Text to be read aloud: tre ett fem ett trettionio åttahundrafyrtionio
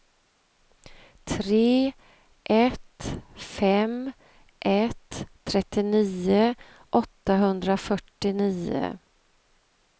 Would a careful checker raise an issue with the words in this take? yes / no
no